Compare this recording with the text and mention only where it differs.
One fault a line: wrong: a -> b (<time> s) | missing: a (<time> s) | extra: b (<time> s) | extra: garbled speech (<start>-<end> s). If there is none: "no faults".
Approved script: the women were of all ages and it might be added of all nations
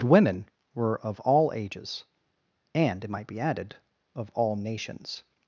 missing: the (0.0 s)